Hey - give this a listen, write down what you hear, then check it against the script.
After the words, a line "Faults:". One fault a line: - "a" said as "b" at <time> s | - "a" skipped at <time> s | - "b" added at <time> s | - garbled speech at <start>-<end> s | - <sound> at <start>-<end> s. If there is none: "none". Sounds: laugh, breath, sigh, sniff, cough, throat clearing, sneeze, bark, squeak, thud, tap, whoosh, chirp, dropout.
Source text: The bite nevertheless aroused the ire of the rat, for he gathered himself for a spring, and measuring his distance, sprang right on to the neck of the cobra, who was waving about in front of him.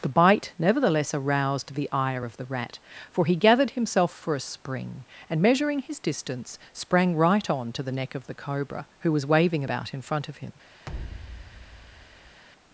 The bite nevertheless aroused the ire of the rat, for he gathered himself for a spring, and measuring his distance, sprang right on to the neck of the cobra, who was waving about in front of him.
Faults:
- thud at 10.9-12.4 s